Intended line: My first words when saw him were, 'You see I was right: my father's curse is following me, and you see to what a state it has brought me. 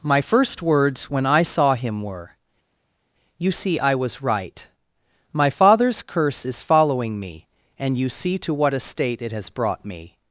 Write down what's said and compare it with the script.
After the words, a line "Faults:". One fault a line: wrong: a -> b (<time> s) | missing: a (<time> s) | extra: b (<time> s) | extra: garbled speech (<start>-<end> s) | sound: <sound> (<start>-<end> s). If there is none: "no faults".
My first words when I saw him were, 'You see I was right: my father's curse is following me, and you see to what a state it has brought me.
Faults:
extra: I (1.2 s)